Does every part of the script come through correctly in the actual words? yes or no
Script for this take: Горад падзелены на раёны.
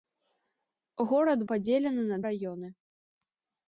yes